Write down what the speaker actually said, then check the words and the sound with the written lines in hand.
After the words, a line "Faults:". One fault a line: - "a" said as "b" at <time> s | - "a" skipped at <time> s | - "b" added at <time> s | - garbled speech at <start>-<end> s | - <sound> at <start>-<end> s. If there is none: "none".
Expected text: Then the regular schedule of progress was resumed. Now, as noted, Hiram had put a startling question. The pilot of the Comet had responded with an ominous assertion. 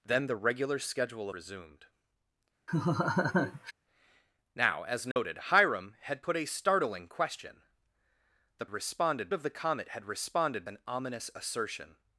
Then the regular schedule resumed. Now, as noted, Hiram had put a startling question. The responded of the Comet had responded an ominous assertion.
Faults:
- "of progress was" skipped at 1.3 s
- laugh at 2.7-3.7 s
- dropout at 5.1-5.2 s
- "pilot" said as "responded" at 8.7 s
- "with" skipped at 10.7 s